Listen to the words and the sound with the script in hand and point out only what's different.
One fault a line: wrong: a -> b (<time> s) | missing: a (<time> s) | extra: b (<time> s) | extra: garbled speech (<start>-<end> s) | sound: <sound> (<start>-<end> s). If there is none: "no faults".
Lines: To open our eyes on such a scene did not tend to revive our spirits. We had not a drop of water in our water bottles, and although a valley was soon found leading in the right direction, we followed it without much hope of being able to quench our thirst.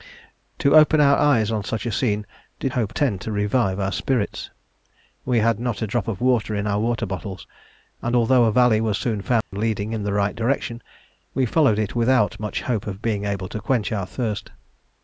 wrong: not -> hope (2.7 s)
sound: dropout (9.4-9.5 s)